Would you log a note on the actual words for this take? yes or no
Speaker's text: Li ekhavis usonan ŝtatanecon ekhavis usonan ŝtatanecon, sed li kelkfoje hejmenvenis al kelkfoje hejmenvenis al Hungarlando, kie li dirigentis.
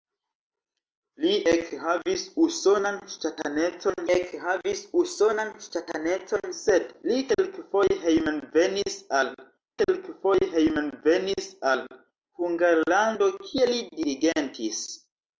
no